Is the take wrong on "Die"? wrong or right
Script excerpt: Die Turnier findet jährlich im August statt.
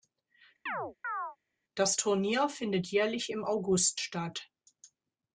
wrong